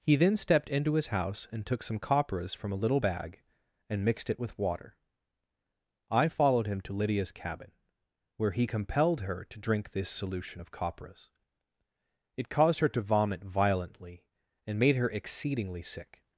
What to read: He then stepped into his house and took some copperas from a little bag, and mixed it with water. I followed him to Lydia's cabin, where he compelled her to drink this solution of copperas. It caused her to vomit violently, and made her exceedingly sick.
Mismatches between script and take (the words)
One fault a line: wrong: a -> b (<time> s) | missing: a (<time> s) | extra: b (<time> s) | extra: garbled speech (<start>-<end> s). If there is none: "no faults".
no faults